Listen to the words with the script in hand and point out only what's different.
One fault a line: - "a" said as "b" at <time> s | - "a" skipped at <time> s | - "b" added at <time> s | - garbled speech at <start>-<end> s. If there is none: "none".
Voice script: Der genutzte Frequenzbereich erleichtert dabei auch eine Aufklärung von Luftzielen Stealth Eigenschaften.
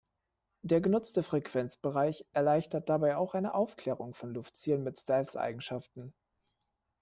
- "mit" added at 4.8 s